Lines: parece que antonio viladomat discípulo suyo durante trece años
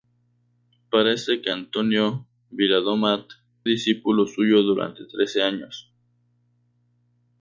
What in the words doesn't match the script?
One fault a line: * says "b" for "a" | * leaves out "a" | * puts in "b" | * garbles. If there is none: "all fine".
all fine